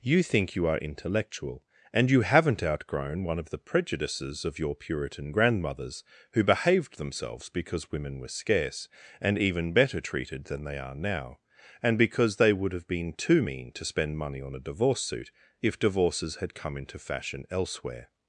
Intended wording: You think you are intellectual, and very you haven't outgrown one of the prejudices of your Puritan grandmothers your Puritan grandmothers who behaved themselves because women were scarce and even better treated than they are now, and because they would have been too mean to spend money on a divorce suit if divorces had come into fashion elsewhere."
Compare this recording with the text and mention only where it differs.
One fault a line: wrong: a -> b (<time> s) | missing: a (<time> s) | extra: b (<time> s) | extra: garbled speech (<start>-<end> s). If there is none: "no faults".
missing: very (2.1 s)
missing: your Puritan grandmothers (6.0 s)